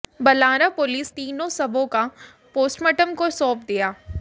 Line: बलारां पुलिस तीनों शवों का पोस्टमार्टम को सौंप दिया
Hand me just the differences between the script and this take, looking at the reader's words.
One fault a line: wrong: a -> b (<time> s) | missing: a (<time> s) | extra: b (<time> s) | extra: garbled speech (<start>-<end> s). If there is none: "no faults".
no faults